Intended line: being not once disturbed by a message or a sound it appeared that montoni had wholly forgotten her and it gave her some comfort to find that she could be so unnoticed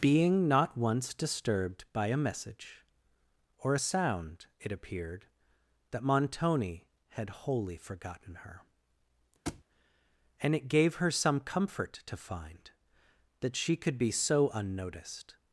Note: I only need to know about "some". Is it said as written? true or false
true